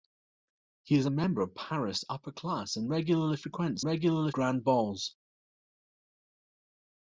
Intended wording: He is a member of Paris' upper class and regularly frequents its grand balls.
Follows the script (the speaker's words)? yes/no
no